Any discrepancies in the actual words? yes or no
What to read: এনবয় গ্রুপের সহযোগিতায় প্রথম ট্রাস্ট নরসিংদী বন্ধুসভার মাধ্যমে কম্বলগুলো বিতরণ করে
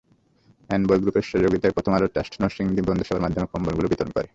yes